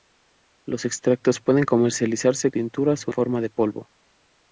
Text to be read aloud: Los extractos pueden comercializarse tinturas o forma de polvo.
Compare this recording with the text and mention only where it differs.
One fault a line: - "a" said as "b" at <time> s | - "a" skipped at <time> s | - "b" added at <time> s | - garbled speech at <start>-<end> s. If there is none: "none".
none